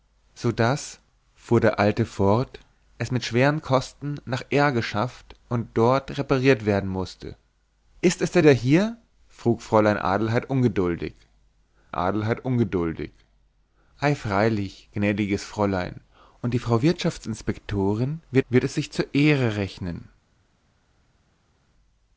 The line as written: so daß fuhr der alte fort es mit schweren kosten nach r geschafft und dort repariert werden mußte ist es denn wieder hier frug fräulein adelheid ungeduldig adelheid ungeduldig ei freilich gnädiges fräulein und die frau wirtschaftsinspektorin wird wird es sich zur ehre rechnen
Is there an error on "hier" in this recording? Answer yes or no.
no